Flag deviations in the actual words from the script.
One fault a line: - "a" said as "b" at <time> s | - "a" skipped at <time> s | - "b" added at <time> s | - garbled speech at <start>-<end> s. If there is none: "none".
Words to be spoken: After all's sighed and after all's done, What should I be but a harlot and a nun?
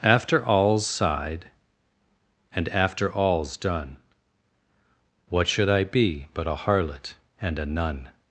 none